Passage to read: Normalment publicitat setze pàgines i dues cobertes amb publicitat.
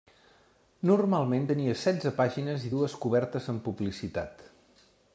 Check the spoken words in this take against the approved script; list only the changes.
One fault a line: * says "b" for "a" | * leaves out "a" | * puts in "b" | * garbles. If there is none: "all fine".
* says "tenia" for "publicitat"